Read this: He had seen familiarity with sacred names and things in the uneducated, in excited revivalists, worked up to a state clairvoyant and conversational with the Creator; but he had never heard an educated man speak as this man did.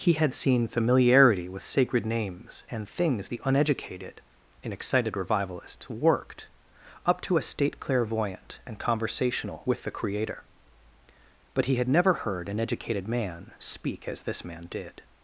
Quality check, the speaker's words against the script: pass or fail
fail